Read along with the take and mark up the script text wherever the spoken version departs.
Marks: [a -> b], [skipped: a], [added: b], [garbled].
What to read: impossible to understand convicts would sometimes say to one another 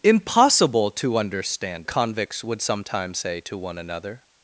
impossible to understand convicts would sometimes say to one another